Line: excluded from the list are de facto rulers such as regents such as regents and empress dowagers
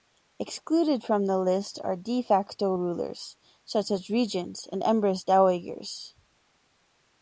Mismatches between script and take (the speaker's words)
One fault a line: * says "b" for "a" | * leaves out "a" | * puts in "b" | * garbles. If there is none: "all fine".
* leaves out "such as regents"